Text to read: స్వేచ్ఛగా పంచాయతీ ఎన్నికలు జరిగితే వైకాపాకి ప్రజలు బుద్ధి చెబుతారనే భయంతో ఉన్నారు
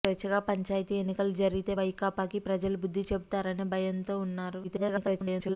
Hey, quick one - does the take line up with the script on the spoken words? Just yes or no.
no